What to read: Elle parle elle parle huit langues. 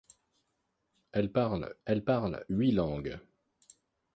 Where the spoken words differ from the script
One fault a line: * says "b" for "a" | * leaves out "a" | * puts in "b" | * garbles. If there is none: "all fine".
all fine